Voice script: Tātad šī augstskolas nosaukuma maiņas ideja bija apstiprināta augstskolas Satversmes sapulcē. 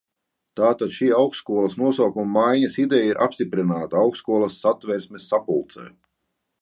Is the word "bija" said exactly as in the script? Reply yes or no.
no